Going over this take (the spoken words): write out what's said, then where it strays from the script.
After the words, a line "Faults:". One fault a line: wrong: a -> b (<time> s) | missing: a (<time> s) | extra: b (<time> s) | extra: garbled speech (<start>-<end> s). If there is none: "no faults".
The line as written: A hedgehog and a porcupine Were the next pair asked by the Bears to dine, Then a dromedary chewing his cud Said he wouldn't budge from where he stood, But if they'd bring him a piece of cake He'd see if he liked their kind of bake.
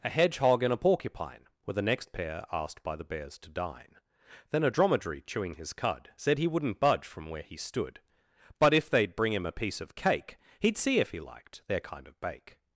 A hedgehog and a porcupine Were the next pair asked by the Bears to dine, Then a dromedary chewing his cud Said he wouldn't budge from where he stood, But if they'd bring him a piece of cake He'd see if he liked their kind of bake.
Faults:
no faults